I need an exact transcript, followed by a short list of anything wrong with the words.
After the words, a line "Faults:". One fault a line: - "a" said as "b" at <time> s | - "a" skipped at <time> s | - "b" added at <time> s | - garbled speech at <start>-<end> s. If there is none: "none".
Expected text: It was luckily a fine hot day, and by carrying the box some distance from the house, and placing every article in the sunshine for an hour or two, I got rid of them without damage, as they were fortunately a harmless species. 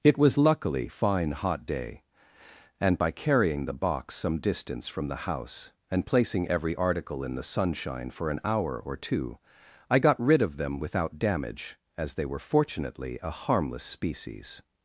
It was luckily fine hot day, and by carrying the box some distance from the house, and placing every article in the sunshine for an hour or two, I got rid of them without damage, as they were fortunately a harmless species.
Faults:
- "a" skipped at 0.9 s